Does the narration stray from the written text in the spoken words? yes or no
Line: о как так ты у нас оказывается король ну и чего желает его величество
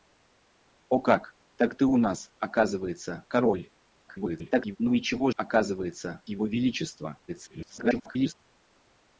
yes